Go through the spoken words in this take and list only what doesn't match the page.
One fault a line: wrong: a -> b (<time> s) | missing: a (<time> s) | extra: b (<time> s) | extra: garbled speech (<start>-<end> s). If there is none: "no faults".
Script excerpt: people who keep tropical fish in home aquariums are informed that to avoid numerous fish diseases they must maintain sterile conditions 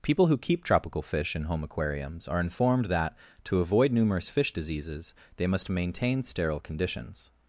no faults